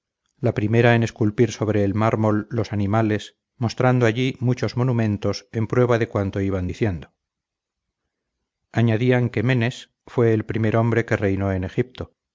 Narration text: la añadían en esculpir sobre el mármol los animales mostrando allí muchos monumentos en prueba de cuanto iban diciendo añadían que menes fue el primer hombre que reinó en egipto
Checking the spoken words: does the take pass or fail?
fail